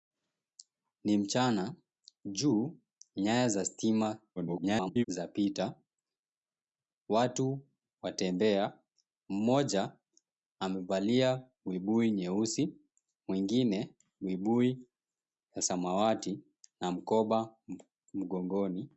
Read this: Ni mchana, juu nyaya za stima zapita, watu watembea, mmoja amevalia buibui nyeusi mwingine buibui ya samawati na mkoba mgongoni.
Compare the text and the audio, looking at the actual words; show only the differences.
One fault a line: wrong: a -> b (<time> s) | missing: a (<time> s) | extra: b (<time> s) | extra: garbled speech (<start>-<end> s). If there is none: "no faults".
extra: garbled speech (4.4-5.0 s)